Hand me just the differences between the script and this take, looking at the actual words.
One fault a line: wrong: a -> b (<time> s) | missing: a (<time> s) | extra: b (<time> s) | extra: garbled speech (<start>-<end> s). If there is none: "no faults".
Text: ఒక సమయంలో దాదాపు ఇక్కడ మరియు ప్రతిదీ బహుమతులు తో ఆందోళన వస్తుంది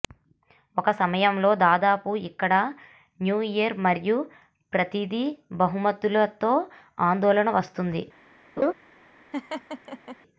extra: న్యూ ఇయర్ (3.2 s)